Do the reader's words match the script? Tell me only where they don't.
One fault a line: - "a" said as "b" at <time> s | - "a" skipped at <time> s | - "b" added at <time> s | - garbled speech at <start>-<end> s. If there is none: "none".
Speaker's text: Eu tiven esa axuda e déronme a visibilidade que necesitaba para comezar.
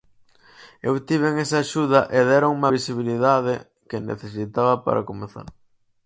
- "a" skipped at 2.7 s